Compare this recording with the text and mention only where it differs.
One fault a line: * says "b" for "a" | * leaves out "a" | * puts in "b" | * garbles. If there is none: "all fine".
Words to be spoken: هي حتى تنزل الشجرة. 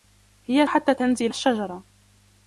all fine